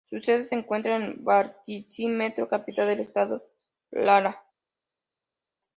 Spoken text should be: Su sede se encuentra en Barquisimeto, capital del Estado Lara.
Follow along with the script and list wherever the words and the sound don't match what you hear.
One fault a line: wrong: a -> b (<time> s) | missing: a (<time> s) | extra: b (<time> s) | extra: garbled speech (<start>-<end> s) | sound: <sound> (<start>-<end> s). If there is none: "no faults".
no faults